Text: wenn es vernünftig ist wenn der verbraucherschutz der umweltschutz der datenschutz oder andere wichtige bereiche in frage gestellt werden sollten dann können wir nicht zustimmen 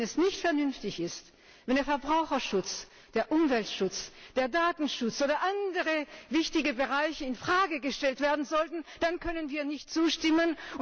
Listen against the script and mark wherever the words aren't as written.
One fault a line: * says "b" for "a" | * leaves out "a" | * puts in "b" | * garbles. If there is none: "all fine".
* puts in "nicht"